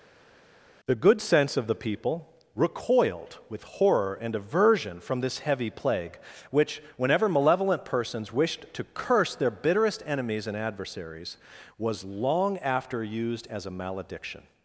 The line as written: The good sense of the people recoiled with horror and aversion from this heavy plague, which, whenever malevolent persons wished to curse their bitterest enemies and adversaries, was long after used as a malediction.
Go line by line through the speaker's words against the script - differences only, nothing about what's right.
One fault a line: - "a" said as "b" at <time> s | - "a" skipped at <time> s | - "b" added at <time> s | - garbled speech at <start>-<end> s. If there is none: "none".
none